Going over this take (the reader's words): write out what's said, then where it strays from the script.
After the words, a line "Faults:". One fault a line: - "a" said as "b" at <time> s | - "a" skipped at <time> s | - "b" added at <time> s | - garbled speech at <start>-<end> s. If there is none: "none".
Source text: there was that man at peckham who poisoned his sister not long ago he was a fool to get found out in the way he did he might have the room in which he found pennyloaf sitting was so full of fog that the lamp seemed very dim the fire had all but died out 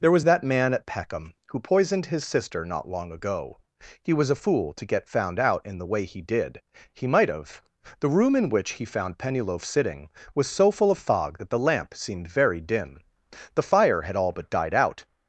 there was that man at peckham who poisoned his sister not long ago he was a fool to get found out in the way he did he might have the room in which he found pennyloaf sitting was so full of fog that the lamp seemed very dim the fire had all but died out
Faults:
none